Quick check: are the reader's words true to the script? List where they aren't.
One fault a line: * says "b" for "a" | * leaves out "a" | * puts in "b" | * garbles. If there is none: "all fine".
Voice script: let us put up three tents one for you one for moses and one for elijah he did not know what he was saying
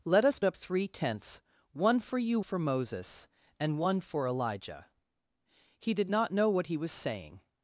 * leaves out "put"
* leaves out "one"